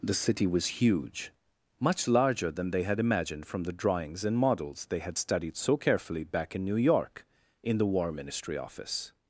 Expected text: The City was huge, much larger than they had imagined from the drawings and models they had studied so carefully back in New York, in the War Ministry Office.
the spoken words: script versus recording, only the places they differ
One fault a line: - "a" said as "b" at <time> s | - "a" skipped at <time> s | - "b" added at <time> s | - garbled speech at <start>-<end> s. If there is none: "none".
none